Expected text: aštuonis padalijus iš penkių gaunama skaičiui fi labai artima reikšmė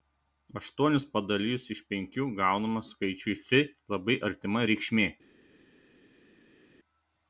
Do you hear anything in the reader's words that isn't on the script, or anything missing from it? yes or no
no